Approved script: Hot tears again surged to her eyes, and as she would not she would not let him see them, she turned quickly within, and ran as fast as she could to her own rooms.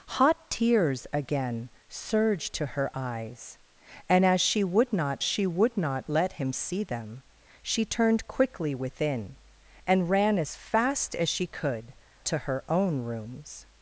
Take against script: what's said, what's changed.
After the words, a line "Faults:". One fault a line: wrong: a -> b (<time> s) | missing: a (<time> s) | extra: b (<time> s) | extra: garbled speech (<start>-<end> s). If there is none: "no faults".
Hot tears again surged to her eyes, and as she would not she would not let him see them, she turned quickly within, and ran as fast as she could to her own rooms.
Faults:
no faults